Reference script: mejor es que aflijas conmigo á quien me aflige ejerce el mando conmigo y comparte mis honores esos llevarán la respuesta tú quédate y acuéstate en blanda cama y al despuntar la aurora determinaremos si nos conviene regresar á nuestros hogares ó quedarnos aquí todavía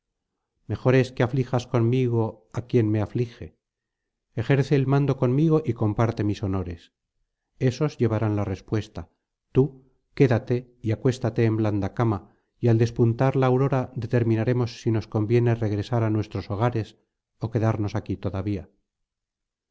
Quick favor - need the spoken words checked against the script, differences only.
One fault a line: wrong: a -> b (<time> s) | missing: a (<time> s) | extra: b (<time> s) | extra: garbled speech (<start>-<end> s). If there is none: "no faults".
no faults